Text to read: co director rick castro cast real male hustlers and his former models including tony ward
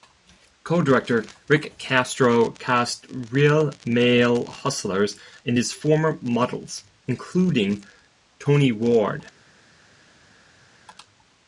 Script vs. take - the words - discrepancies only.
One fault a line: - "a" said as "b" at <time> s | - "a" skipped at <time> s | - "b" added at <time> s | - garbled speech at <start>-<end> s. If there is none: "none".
none